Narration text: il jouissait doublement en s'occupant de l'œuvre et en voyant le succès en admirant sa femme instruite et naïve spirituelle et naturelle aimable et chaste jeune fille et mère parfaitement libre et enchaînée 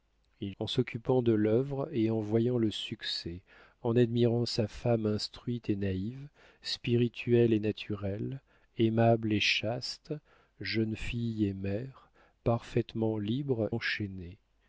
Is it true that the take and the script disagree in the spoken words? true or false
true